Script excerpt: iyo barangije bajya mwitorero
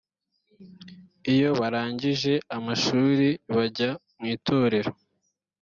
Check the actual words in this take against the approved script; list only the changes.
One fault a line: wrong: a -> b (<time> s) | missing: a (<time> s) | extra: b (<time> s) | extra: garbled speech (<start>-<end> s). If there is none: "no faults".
extra: amashuri (2.6 s)